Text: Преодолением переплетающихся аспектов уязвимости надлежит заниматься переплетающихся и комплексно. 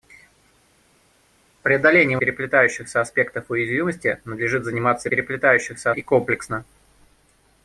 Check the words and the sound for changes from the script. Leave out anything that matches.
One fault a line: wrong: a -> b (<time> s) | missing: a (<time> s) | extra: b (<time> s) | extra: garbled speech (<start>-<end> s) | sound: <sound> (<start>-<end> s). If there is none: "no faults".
no faults